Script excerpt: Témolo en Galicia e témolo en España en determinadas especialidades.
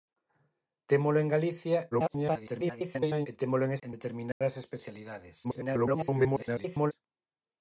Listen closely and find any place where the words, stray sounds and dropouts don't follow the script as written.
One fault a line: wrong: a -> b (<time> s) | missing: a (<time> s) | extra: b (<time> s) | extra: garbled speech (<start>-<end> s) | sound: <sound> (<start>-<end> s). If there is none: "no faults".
extra: garbled speech (1.9-3.3 s)
missing: España (3.7 s)
sound: dropout (4.3-4.4 s)
extra: garbled speech (5.4-6.9 s)